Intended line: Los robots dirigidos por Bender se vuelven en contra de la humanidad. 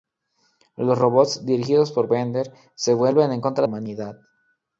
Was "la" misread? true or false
true